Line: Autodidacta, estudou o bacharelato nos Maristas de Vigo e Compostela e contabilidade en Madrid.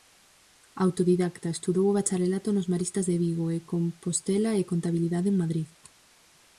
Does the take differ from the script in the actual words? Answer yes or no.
no